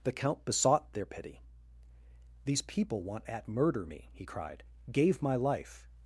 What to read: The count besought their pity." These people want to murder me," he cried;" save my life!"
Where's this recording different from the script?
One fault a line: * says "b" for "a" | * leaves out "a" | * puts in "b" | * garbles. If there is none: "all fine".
* says "at" for "to"
* says "gave" for "save"